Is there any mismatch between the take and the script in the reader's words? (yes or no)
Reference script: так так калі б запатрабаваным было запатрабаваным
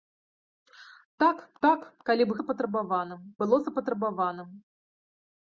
no